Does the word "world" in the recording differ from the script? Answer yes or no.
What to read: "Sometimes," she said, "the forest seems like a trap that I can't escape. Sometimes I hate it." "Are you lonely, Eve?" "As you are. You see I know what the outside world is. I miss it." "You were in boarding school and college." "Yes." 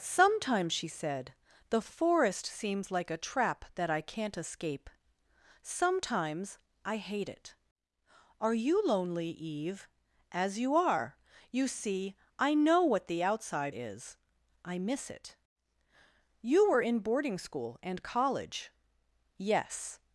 yes